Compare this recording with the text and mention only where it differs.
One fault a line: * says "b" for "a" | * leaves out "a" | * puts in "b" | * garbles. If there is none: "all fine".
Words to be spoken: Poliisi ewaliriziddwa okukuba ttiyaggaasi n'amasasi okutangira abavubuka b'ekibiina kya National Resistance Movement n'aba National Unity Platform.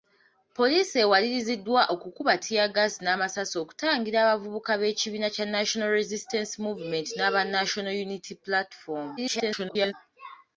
* garbles